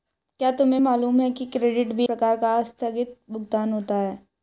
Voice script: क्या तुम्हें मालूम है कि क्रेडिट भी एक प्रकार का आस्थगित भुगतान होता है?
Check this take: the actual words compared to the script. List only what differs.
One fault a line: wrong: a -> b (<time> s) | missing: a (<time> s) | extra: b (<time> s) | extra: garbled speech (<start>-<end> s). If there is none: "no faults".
missing: एक (2.1 s)